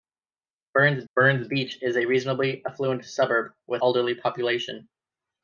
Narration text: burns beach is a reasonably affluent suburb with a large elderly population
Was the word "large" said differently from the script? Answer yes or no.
yes